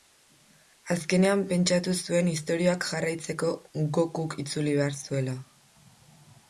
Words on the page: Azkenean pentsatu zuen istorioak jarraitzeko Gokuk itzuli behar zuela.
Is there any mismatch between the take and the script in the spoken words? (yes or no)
no